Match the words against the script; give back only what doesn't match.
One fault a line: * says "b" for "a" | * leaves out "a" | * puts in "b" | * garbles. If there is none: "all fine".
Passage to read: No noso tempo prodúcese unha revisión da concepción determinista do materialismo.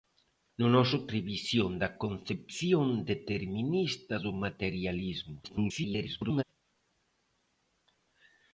* leaves out "tempo prodúcese unha"
* garbles